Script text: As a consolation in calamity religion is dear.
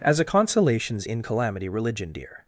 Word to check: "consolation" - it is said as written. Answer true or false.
false